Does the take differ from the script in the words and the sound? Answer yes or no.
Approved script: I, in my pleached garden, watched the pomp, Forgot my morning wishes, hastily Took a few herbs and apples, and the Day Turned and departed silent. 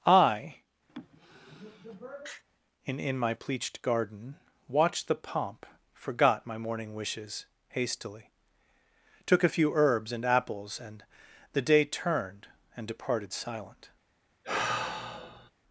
yes